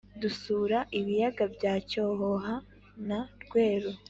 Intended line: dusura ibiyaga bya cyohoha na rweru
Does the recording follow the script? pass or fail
pass